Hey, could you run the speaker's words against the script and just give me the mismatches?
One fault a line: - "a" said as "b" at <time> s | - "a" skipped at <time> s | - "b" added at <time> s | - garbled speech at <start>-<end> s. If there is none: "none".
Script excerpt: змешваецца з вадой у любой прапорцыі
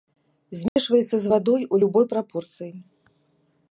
none